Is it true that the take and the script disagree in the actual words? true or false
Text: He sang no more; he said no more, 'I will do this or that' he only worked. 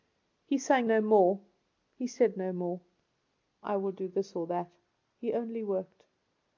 false